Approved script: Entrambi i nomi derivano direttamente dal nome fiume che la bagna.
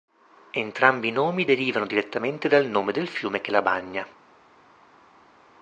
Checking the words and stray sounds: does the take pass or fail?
fail